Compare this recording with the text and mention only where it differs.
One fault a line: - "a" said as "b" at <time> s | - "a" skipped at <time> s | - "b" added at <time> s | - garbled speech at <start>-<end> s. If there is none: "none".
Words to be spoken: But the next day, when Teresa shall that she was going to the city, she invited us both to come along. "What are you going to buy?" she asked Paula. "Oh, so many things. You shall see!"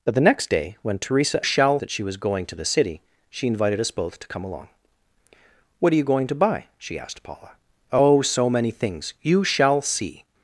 none